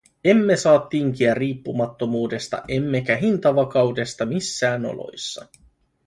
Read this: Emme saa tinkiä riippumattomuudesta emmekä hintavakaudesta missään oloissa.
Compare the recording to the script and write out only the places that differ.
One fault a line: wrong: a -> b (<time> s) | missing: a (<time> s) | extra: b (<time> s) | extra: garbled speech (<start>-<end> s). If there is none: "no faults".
no faults